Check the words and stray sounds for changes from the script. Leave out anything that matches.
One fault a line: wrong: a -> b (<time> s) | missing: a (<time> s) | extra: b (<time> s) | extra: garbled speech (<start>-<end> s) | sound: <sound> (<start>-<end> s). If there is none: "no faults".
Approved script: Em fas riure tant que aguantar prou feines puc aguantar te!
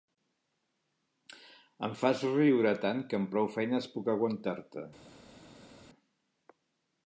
wrong: aguantar -> amb (3.2 s)